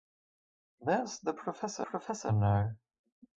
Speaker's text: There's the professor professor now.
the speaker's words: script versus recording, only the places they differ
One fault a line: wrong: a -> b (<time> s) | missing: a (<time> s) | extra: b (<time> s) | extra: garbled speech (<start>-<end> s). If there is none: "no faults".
no faults